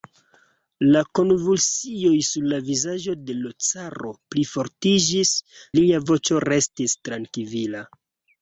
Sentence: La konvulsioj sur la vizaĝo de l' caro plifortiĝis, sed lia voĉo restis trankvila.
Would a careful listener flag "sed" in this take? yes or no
yes